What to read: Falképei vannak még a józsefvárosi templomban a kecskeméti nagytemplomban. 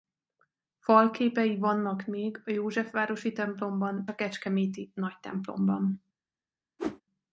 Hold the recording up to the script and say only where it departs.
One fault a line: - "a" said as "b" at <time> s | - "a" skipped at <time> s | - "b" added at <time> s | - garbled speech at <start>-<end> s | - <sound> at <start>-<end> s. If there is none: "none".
- whoosh at 6.8-7.0 s